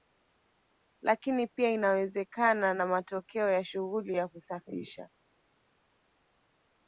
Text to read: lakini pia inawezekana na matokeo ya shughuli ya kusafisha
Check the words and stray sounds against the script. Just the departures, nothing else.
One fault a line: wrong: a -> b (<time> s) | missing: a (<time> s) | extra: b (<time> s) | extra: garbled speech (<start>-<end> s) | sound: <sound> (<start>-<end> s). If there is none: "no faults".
no faults